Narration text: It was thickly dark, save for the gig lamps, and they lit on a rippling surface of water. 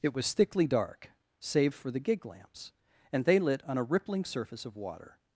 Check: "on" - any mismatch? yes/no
no